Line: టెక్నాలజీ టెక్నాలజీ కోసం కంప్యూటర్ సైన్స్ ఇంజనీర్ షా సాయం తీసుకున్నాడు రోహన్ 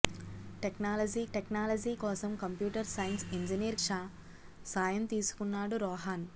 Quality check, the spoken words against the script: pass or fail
pass